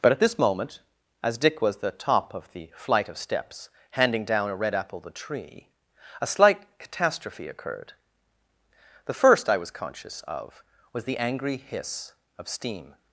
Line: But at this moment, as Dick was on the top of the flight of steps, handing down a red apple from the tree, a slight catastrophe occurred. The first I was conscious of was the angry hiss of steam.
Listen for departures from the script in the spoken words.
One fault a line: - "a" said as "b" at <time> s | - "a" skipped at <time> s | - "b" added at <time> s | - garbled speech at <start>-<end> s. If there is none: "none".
- "on" skipped at 1.8 s
- "from" skipped at 5.0 s